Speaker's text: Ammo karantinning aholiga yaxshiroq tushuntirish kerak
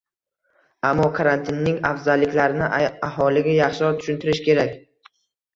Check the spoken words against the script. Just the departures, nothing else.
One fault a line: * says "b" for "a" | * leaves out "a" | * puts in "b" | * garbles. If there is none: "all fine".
* puts in "afzalliklarini"